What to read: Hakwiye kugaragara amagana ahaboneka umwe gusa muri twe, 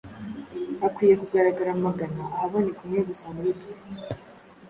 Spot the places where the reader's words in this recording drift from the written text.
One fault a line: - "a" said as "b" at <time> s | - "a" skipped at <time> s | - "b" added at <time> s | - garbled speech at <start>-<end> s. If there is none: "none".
none